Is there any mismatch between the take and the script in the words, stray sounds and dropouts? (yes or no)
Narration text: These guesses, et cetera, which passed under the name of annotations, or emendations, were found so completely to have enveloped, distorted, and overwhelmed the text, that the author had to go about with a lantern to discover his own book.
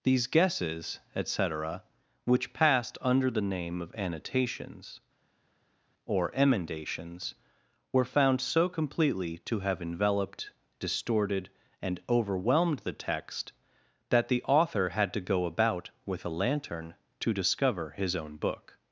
no